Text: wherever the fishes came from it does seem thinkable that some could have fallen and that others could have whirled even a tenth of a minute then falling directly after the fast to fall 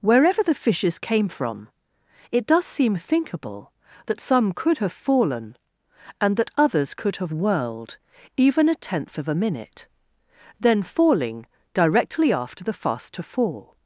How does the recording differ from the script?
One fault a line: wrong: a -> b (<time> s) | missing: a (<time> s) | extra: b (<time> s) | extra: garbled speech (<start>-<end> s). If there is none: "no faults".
no faults